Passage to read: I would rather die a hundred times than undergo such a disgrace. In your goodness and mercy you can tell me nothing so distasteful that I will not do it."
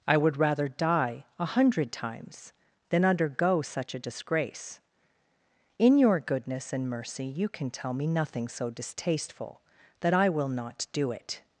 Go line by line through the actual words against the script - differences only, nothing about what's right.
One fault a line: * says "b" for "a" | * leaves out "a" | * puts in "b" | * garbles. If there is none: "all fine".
all fine